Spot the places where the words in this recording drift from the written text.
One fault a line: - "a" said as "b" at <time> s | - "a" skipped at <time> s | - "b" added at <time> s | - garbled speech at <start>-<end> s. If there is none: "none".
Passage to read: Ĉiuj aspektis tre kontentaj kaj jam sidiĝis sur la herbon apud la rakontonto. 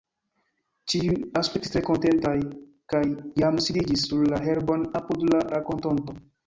none